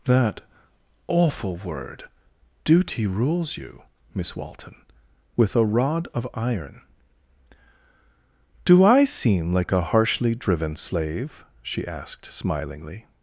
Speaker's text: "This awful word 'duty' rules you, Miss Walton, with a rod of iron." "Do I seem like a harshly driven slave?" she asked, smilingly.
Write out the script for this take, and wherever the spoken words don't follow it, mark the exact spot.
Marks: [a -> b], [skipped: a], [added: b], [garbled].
["This -> That] awful word 'duty' rules you, Miss Walton, with a rod of iron." "Do I seem like a harshly driven slave?" she asked, smilingly.